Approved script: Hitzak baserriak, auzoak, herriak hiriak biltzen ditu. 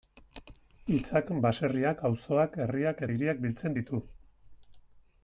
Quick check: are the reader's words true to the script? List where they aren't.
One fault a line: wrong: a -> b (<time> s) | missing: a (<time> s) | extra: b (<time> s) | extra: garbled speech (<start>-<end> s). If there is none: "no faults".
no faults